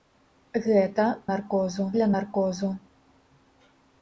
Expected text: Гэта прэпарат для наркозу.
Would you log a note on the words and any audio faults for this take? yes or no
yes